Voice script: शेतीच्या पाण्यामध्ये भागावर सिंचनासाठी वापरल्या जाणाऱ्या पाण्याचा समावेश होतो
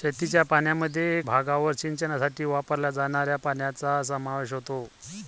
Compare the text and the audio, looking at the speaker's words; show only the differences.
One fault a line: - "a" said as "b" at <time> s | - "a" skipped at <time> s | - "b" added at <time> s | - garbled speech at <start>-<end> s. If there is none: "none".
none